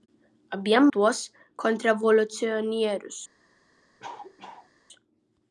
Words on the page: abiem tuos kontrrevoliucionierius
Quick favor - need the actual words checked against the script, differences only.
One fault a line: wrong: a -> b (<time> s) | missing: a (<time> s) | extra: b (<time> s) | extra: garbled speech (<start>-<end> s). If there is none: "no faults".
no faults